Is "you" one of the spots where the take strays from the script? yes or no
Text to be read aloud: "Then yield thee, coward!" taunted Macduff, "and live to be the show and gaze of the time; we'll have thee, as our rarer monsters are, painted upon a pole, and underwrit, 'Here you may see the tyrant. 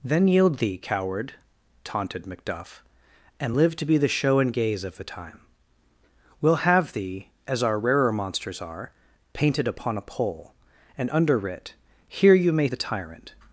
no